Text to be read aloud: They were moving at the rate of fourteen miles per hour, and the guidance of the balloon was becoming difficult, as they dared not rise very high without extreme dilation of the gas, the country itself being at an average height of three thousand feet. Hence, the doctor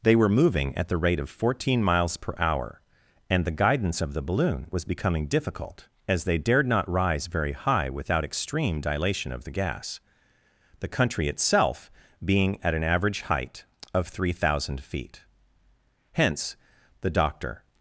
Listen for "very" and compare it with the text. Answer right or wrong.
right